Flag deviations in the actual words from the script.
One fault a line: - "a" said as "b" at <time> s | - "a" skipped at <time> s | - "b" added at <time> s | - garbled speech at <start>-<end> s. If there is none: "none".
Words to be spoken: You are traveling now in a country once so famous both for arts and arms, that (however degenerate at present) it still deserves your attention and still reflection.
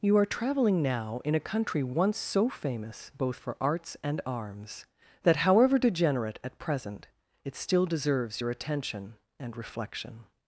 - "still" skipped at 9.6 s